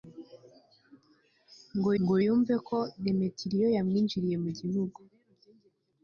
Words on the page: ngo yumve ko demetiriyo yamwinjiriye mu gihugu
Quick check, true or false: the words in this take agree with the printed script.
false